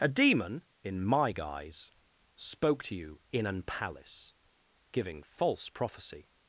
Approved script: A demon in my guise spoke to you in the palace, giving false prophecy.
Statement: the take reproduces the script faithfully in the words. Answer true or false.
false